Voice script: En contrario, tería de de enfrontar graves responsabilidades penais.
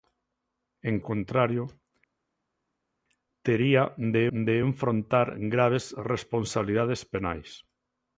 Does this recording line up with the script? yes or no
yes